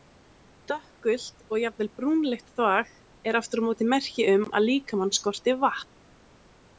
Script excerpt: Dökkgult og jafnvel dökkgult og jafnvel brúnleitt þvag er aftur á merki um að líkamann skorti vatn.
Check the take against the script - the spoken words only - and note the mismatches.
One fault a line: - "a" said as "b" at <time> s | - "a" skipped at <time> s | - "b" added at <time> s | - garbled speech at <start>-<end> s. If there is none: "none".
- "dökkgult og jafnvel" skipped at 1.9 s
- "móti" added at 3.7 s